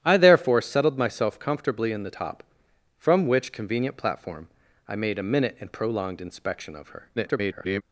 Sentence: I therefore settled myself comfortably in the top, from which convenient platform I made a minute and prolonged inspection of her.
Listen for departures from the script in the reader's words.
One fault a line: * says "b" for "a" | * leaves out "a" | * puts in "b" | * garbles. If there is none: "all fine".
* garbles